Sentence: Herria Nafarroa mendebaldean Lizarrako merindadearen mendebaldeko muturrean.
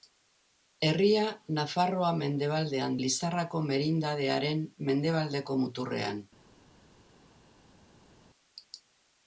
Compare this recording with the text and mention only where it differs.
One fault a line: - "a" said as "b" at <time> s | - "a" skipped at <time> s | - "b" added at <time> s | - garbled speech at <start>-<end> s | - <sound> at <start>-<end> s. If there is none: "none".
none